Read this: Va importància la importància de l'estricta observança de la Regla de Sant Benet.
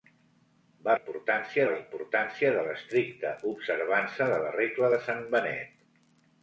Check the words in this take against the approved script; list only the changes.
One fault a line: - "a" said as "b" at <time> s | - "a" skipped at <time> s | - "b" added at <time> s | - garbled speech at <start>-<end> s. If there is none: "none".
none